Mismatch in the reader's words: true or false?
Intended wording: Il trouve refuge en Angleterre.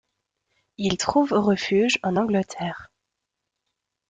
false